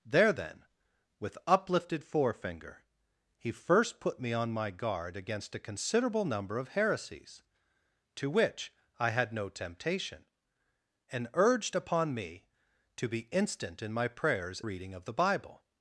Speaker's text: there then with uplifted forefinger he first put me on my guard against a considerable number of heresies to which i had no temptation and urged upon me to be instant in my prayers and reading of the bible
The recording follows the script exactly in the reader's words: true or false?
false